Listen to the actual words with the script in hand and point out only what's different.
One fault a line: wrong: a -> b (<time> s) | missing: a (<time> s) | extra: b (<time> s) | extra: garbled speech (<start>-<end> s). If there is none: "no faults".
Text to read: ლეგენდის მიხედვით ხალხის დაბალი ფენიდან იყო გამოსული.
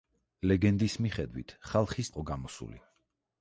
missing: დაბალი ფენიდან (2.1 s)